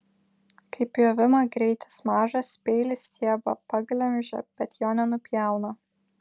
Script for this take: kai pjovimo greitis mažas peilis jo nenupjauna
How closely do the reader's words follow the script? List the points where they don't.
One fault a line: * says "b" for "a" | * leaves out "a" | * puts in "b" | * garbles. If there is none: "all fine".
* puts in "stiebą paglemžia bet"